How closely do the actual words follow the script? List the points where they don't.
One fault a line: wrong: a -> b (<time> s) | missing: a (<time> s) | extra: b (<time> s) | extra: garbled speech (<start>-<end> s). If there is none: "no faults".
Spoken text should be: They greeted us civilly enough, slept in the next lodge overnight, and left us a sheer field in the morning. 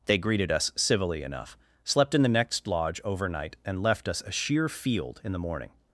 no faults